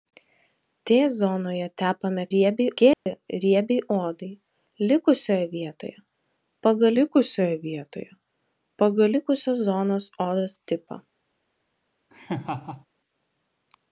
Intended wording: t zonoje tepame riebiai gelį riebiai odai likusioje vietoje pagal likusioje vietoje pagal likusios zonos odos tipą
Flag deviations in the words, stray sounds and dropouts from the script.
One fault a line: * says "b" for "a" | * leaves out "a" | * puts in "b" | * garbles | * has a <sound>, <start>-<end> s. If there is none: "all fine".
* has a dropout, 2.9-3.1 s
* has a laugh, 12.1-12.9 s